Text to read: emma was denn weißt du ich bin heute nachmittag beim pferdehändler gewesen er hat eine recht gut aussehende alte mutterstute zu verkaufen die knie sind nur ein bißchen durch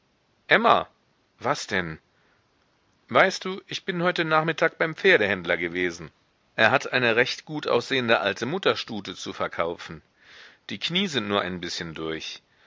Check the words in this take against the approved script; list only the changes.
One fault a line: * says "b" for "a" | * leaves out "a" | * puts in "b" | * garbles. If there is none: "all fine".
all fine